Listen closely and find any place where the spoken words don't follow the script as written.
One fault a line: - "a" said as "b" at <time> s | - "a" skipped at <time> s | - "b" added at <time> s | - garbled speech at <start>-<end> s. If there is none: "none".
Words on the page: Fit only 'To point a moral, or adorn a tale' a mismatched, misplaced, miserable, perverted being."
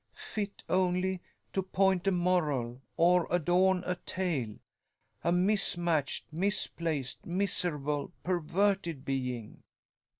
none